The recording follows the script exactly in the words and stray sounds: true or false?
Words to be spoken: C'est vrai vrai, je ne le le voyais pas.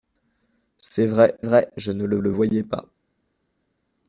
true